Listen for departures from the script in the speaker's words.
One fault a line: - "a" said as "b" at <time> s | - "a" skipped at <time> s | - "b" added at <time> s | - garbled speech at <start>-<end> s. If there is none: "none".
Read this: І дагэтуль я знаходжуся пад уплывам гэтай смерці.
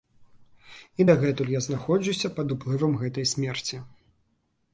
none